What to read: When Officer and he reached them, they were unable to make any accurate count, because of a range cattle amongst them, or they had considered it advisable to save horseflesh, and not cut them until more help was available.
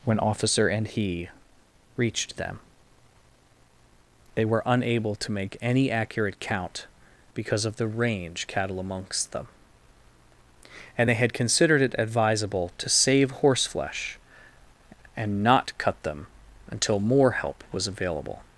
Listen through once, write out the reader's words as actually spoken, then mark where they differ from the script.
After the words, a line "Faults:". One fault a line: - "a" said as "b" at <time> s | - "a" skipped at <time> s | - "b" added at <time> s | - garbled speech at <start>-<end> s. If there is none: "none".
When Officer and he reached them, they were unable to make any accurate count, because of the range cattle amongst them, and they had considered it advisable to save horseflesh, and not cut them until more help was available.
Faults:
- "a" said as "the" at 7.8 s
- "or" said as "and" at 11.0 s